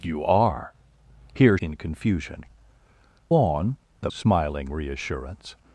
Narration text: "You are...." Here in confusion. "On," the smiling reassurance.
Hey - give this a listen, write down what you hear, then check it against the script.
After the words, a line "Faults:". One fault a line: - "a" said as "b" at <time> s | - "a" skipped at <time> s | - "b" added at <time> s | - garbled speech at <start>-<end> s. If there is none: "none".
"You are...." Here in confusion. "On," the smiling reassurance.
Faults:
none